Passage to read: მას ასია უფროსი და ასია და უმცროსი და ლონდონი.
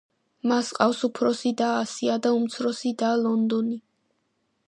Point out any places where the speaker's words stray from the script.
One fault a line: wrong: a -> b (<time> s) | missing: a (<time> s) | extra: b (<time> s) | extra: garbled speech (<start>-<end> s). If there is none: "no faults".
wrong: ასია -> ჰყავს (0.8 s)